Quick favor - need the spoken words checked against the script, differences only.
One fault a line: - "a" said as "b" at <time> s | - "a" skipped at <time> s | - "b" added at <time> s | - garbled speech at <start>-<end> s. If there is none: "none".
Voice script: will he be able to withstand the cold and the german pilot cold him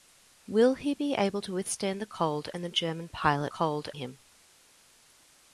none